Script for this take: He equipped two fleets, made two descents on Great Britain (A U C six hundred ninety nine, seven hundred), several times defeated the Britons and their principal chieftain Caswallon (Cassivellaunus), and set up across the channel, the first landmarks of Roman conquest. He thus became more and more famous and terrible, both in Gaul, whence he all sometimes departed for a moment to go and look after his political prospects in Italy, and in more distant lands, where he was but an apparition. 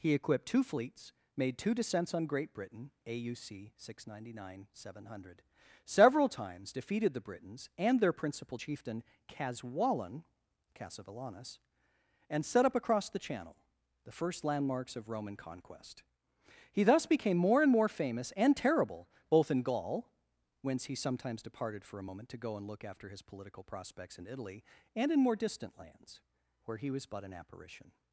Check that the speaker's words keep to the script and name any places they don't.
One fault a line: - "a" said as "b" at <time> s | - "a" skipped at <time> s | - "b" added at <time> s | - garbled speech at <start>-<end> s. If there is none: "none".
- "all" skipped at 20.9 s